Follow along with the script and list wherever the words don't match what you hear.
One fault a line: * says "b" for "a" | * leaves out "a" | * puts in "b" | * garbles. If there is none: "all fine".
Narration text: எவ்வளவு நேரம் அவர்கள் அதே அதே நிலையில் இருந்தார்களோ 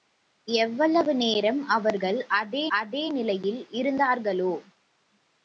all fine